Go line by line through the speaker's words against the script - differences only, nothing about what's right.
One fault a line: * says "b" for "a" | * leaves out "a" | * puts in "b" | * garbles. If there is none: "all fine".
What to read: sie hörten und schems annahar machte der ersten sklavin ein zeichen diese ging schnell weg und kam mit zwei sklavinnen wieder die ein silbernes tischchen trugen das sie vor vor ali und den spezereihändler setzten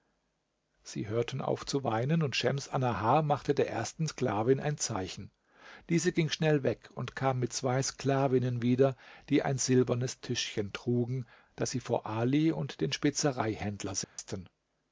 * puts in "auf zu weinen"
* leaves out "vor"